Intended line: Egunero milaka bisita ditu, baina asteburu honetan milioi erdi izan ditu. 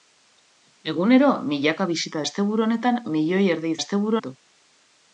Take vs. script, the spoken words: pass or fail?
fail